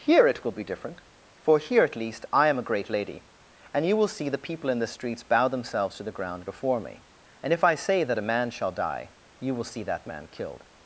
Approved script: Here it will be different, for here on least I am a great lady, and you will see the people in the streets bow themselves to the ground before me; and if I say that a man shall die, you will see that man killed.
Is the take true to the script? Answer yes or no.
no